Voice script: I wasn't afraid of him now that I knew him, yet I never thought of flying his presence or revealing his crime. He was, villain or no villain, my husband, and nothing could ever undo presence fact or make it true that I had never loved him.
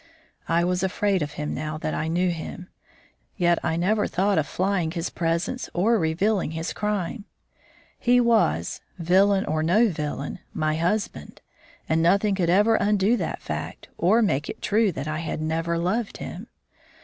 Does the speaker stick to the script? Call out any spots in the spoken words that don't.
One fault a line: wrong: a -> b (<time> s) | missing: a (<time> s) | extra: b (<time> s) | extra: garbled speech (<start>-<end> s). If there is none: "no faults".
wrong: wasn't -> was (0.6 s)
wrong: presence -> that (13.2 s)